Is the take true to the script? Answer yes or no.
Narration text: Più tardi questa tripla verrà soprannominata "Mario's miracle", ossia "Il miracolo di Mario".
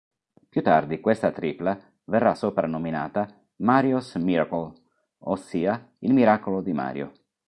yes